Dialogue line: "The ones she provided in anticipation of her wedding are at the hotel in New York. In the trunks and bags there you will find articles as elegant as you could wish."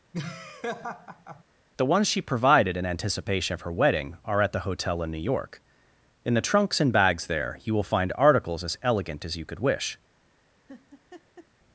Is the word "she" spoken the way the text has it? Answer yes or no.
yes